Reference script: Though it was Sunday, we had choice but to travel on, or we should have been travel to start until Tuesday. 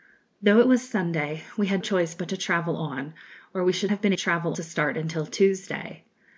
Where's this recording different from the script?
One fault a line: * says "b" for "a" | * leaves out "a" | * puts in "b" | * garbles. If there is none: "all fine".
all fine